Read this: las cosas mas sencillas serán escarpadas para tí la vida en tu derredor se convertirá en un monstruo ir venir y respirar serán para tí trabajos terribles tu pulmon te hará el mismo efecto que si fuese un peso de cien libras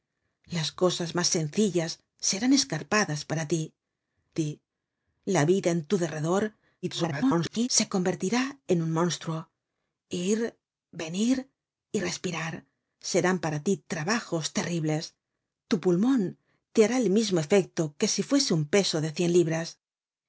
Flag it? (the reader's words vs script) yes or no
yes